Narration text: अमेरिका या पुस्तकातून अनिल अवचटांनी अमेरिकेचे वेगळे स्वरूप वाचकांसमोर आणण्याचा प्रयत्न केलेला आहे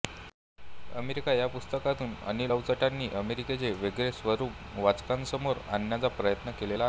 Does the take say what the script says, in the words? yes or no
yes